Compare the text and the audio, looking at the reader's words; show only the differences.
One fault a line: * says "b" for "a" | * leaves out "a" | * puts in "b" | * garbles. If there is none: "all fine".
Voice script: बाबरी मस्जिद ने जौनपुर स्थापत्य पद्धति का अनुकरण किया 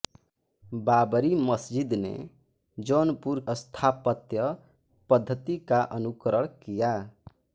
all fine